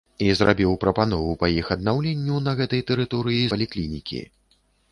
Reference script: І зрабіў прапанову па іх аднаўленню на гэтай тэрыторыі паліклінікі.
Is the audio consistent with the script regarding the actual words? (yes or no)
yes